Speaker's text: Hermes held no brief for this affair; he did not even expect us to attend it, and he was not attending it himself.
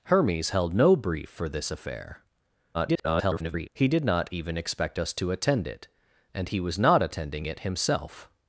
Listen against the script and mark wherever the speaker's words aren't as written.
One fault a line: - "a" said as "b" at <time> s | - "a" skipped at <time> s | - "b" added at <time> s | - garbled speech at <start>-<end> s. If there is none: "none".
- garbled speech at 2.7-3.7 s